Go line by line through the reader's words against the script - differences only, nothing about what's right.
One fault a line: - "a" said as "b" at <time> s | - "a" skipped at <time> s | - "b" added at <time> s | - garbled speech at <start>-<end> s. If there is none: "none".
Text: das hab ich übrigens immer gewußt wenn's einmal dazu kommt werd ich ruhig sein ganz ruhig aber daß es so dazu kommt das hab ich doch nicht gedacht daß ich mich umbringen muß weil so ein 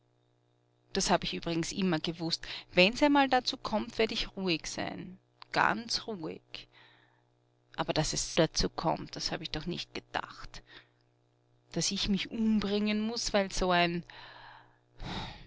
- "so" skipped at 8.4 s